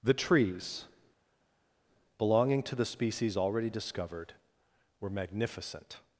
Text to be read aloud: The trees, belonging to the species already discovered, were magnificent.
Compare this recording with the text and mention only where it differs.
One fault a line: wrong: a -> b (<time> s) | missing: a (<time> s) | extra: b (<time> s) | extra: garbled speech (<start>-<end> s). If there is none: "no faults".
no faults